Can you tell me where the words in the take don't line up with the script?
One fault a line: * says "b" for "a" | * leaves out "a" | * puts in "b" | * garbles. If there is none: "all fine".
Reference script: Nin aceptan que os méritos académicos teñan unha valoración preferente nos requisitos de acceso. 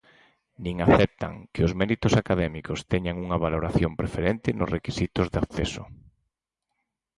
all fine